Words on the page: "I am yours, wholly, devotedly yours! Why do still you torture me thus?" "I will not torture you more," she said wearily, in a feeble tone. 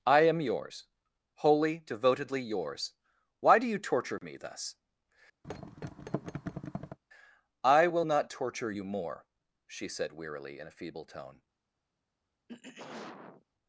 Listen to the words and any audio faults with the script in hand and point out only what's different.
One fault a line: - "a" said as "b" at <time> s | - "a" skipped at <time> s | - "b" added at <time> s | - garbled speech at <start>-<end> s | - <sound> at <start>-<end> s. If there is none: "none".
- "still" skipped at 3.7 s
- thud at 5.4-7.0 s
- throat clearing at 12.5-13.4 s